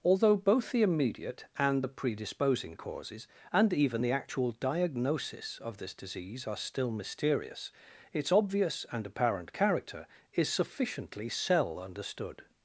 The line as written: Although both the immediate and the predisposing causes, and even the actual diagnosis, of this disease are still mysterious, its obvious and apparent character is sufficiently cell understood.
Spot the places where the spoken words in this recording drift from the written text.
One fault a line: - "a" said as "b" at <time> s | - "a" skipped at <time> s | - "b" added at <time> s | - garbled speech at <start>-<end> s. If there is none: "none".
none